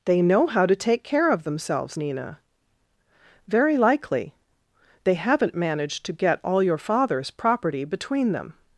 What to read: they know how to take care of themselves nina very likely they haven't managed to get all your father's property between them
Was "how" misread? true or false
false